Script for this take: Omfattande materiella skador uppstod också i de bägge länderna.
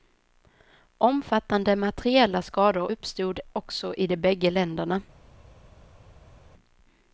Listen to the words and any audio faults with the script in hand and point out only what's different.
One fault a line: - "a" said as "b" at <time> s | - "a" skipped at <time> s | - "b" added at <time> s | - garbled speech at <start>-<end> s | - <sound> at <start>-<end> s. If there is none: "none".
none